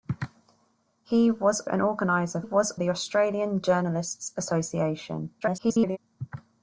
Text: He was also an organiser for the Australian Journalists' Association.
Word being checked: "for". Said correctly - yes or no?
no